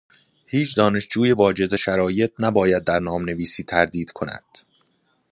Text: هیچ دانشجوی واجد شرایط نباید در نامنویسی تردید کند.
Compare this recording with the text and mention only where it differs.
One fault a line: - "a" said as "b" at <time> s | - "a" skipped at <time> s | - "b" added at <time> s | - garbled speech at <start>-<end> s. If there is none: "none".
none